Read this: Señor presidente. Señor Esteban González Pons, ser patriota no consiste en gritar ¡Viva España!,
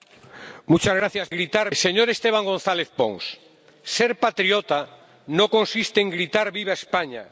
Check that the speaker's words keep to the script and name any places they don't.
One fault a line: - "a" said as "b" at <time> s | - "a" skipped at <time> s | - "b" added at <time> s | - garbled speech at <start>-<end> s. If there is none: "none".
- "presidente" said as "gritar" at 1.3 s